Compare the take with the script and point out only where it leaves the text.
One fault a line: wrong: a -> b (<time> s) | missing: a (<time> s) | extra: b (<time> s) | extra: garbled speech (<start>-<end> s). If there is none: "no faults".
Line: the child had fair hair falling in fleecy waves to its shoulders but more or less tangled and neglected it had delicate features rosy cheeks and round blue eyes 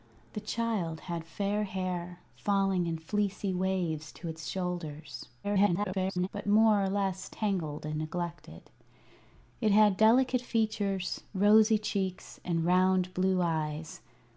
extra: garbled speech (5.4-6.3 s)